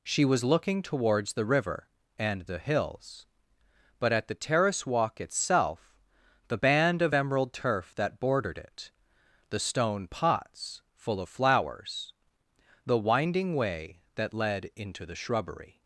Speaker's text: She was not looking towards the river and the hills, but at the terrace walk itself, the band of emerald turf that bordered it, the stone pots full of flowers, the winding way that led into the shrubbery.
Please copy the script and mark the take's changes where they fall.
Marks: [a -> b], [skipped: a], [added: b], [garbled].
She was [skipped: not] looking towards the river and the hills, but at the terrace walk itself, the band of emerald turf that bordered it, the stone pots full of flowers, the winding way that led into the shrubbery.